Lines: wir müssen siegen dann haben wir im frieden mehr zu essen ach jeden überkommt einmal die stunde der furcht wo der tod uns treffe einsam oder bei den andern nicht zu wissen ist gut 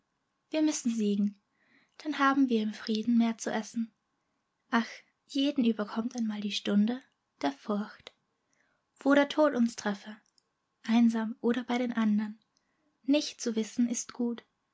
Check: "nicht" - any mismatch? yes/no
no